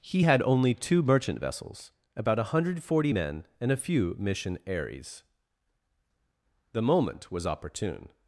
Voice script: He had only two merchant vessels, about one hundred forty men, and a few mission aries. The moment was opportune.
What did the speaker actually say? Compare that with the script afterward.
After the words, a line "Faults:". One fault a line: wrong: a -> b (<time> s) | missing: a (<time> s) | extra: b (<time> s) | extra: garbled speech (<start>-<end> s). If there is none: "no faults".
He had only two merchant vessels, about one hundred forty men, and a few mission aries. The moment was opportune.
Faults:
no faults